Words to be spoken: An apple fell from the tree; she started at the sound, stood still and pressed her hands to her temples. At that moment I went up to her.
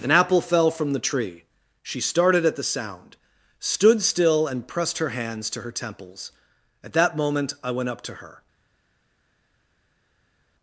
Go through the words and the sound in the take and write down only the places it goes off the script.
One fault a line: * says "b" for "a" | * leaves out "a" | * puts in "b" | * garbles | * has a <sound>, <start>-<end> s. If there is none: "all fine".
all fine